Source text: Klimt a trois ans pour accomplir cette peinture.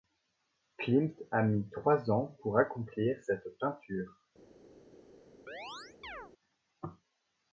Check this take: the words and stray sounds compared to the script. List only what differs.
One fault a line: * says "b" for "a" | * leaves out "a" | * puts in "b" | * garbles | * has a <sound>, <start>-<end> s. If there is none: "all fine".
* puts in "mis"
* has a chirp, 5.5-6.3 s